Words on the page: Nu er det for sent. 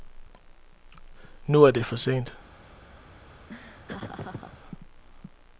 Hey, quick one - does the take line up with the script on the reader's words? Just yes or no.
yes